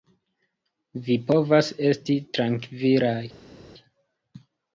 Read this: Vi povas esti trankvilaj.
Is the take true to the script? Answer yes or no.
yes